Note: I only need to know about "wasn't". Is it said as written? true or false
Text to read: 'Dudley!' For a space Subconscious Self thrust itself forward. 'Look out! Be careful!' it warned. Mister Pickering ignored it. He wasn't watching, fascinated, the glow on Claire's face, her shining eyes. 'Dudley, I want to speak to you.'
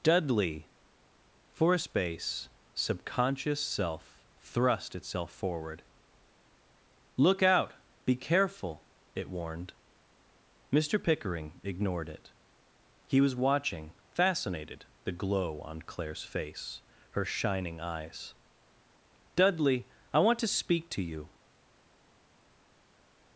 false